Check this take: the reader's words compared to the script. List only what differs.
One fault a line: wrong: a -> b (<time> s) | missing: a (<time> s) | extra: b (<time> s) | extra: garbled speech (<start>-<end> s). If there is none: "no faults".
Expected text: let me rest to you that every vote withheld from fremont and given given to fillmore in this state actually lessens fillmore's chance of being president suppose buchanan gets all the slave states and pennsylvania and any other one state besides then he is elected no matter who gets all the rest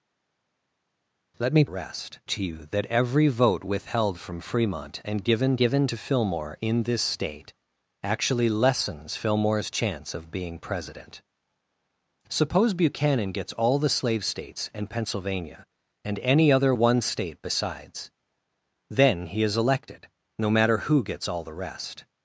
no faults